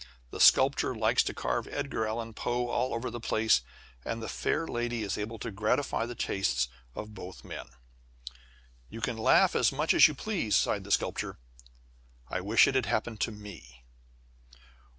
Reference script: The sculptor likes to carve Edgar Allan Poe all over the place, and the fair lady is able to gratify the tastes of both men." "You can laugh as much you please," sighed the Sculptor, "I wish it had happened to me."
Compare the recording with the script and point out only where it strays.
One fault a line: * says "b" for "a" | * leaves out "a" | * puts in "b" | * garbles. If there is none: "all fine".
* puts in "as"